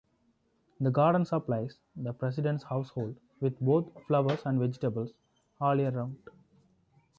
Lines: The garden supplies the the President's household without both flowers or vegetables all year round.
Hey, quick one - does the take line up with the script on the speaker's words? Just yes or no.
no